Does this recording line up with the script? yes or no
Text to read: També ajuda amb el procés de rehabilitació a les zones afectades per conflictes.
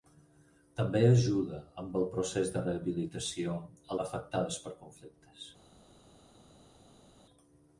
no